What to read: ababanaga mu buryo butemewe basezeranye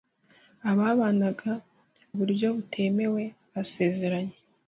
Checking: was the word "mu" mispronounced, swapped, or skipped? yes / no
yes